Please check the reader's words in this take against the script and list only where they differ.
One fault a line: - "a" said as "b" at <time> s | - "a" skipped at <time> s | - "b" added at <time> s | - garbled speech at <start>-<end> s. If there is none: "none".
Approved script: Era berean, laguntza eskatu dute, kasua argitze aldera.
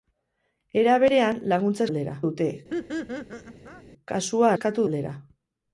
- "eskatu" said as "aldera" at 1.9 s
- "argitze" said as "eskatu" at 4.5 s